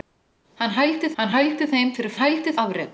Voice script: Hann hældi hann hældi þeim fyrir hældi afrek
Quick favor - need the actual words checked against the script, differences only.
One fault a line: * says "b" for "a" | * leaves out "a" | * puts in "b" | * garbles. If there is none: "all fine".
all fine